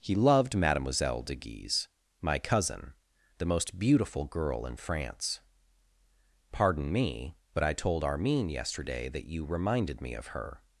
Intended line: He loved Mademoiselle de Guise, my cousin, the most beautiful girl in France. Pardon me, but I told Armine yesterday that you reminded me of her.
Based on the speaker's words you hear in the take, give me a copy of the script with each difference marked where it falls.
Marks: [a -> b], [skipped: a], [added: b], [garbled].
He loved Mademoiselle de Guise, my cousin, the most beautiful girl in France. Pardon me, but I told Armine yesterday that you reminded me of her.